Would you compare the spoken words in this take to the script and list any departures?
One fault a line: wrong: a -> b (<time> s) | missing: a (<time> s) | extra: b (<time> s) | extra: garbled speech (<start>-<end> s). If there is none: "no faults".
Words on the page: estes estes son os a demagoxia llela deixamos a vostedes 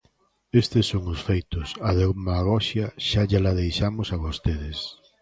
missing: estes (0.8 s)
extra: feitos (1.3 s)
extra: xa (3.1 s)